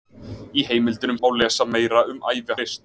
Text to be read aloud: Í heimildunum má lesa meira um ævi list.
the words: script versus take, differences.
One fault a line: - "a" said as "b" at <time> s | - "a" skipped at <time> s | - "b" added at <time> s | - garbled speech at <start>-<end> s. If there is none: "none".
none